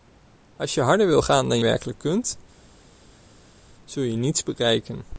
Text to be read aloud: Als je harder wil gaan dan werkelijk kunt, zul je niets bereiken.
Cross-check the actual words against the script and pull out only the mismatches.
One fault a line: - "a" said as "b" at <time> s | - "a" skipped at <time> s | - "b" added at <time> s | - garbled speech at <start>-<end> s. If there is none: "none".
none